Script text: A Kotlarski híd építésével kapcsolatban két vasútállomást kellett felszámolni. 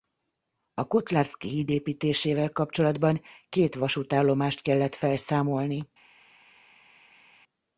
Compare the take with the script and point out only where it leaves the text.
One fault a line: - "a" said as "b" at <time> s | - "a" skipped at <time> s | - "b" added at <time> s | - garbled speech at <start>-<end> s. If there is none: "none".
none